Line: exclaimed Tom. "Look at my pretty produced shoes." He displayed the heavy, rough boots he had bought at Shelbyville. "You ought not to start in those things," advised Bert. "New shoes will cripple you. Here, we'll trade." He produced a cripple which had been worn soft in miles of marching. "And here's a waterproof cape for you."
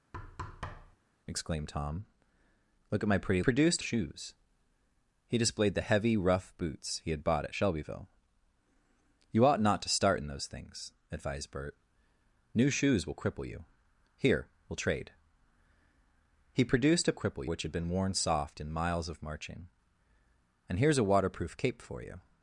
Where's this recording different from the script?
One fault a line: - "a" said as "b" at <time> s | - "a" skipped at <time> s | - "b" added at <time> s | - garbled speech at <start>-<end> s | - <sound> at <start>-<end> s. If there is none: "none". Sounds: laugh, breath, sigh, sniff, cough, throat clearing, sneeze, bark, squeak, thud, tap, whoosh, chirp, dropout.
- thud at 0.1-1.0 s